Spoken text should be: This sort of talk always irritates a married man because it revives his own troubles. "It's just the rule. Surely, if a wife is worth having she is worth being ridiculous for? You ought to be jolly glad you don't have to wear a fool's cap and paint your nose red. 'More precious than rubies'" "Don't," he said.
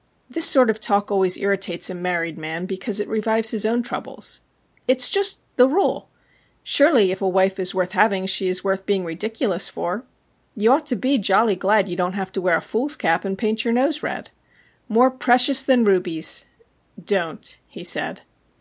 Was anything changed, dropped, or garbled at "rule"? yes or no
no